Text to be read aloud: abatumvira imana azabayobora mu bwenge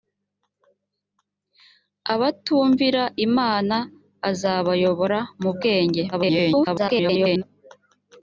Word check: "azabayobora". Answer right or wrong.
right